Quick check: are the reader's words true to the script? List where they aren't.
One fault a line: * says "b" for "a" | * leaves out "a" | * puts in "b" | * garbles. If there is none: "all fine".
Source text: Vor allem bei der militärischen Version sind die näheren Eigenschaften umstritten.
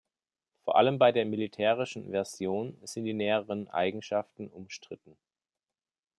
all fine